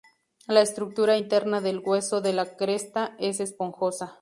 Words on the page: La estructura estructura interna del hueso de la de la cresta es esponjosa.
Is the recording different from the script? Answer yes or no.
yes